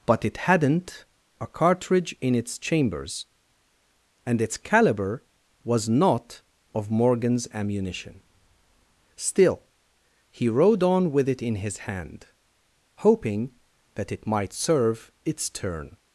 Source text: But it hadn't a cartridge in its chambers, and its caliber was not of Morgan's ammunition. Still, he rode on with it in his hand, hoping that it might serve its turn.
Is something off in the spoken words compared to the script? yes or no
no